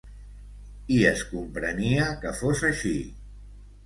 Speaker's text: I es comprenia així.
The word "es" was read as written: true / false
true